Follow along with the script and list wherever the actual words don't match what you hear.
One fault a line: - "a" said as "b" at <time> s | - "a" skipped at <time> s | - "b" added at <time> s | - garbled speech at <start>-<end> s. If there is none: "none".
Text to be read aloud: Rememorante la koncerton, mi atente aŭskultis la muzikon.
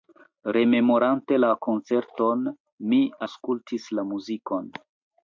- "atente" skipped at 3.0 s